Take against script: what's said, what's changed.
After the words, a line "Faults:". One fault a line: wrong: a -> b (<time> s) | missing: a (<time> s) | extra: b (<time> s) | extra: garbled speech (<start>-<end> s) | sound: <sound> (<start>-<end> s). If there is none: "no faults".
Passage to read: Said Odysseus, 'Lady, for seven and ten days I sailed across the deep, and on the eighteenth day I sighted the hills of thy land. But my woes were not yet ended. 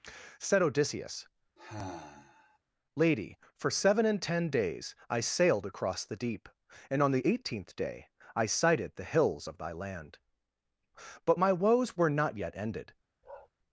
Said Odysseus, 'Lady, for seven and ten days I sailed across the deep, and on the eighteenth day I sighted the hills of thy land. But my woes were not yet ended.
Faults:
sound: sigh (1.6-2.6 s)
sound: bark (13.2-13.5 s)